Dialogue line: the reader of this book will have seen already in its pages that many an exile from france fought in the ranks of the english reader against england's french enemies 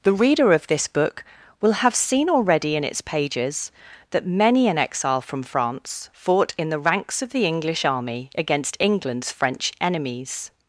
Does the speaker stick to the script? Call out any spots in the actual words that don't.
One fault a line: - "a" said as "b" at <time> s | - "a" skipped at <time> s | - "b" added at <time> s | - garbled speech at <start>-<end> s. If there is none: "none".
- "reader" said as "army" at 7.8 s